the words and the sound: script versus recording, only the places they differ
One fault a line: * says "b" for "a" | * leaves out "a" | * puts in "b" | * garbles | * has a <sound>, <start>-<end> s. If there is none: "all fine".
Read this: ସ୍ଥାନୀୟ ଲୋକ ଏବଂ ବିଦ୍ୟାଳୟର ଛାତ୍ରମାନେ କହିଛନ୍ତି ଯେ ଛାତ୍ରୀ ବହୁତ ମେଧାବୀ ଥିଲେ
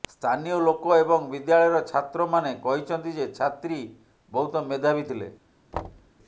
* has a thud, 5.7-6.1 s